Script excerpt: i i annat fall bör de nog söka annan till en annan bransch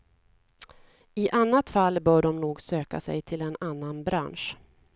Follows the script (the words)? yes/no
no